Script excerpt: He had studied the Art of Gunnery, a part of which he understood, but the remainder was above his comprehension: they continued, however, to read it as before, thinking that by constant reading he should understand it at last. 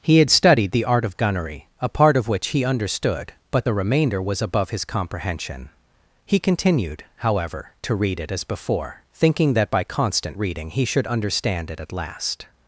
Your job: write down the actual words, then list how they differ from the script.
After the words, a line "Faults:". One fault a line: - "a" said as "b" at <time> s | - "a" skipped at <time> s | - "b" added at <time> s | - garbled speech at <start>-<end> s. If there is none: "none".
He had studied the Art of Gunnery, a part of which he understood, but the remainder was above his comprehension: he continued, however, to read it as before, thinking that by constant reading he should understand it at last.
Faults:
- "they" said as "he" at 6.2 s